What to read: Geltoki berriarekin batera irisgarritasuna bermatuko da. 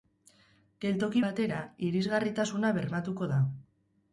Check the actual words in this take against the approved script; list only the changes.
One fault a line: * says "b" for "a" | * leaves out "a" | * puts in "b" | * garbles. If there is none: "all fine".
* leaves out "berriarekin"